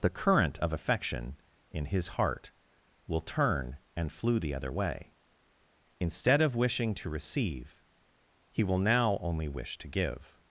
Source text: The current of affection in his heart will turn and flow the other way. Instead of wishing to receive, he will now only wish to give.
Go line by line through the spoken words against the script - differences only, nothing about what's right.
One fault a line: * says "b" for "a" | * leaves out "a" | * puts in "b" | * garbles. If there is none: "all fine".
* says "flew" for "flow"